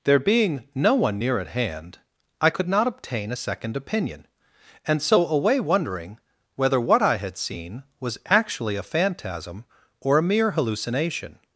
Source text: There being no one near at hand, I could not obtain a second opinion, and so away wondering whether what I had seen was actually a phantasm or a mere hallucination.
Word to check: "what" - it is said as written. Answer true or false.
true